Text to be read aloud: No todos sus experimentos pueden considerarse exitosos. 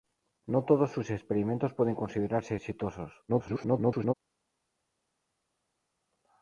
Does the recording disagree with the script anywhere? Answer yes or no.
yes